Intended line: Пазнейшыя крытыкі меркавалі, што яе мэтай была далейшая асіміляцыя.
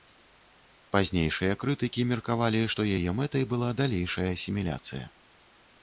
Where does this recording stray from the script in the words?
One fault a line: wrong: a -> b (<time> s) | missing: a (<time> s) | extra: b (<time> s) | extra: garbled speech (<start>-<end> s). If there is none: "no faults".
no faults